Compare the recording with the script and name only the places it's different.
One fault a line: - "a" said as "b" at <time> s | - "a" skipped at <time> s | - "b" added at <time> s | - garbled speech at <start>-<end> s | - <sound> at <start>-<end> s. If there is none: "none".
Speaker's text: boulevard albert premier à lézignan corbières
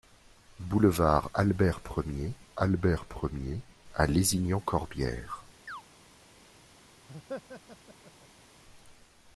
- "albert premier" added at 2.6 s
- chirp at 5.7-5.8 s
- laugh at 7.1-8.5 s